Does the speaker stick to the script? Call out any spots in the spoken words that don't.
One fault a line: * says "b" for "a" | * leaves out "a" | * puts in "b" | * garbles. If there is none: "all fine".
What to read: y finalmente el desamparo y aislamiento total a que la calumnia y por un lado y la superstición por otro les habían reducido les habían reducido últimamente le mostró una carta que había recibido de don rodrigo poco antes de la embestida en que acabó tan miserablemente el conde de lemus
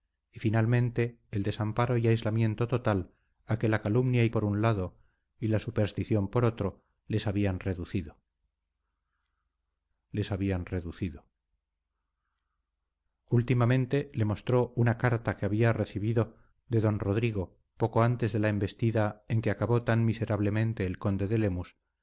all fine